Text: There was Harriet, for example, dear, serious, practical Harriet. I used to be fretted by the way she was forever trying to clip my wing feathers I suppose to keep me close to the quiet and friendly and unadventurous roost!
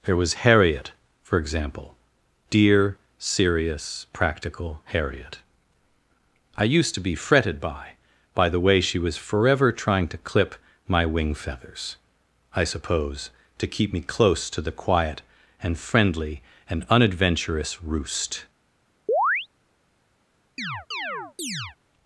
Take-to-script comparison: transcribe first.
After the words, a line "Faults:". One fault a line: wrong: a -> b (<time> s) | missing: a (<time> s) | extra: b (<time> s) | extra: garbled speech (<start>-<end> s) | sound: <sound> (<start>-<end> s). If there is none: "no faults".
There was Harriet, for example, dear, serious, practical Harriet. I used to be fretted by by the way she was forever trying to clip my wing feathers I suppose to keep me close to the quiet and friendly and unadventurous roost!
Faults:
extra: by (8.3 s)
sound: chirp (19.1-19.5 s)
sound: chirp (20.6-21.8 s)